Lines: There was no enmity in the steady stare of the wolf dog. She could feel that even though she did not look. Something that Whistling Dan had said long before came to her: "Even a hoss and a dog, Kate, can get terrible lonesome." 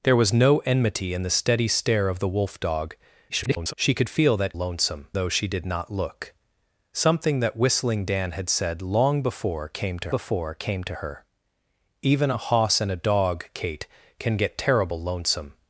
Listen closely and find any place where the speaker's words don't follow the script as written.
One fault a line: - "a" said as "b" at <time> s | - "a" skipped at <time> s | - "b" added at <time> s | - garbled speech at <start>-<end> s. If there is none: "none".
- garbled speech at 3.3-3.7 s
- "even" said as "lonesome" at 4.6 s
- "before came to" added at 10.1 s